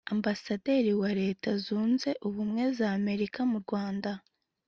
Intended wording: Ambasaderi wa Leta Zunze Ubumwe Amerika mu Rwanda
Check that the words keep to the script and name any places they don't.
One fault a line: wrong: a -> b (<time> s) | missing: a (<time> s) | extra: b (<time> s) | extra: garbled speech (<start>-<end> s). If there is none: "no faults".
extra: za (2.8 s)